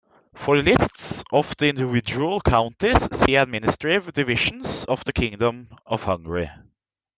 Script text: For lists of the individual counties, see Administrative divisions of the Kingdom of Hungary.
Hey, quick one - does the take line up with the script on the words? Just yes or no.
yes